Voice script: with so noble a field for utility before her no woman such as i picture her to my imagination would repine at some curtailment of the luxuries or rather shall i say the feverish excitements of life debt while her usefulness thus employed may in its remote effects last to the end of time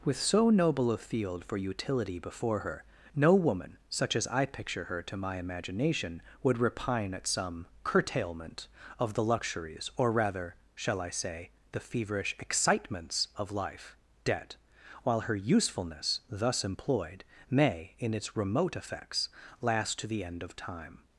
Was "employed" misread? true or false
false